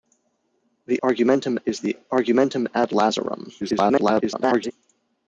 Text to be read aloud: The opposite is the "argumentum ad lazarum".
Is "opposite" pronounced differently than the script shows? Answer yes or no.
yes